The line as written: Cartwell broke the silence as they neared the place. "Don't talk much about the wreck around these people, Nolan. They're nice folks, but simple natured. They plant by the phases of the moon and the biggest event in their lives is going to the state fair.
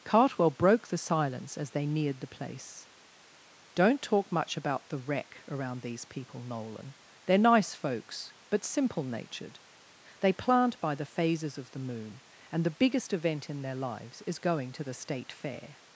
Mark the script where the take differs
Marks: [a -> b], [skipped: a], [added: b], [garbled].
Cartwell broke the silence as they neared the place. "Don't talk much about the wreck around these people, Nolan. They're nice folks, but simple natured. They plant by the phases of the moon and the biggest event in their lives is going to the state fair.